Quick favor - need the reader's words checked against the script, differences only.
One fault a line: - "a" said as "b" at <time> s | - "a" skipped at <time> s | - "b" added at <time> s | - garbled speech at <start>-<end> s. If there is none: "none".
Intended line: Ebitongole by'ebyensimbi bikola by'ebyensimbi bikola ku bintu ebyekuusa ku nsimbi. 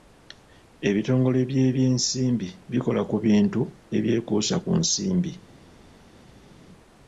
- "by'ebyensimbi bikola" skipped at 3.0 s